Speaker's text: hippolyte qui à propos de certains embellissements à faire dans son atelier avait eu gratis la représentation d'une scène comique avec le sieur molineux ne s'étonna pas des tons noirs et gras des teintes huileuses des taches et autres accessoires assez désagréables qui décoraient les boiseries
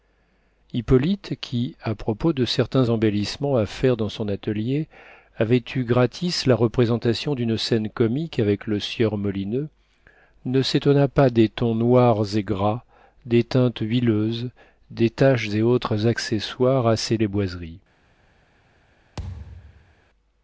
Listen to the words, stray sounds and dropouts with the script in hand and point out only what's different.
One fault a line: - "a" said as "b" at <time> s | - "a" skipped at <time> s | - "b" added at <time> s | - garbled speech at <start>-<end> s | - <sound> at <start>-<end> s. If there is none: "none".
- "désagréables qui décoraient" skipped at 17.2 s
- thud at 19.2-19.9 s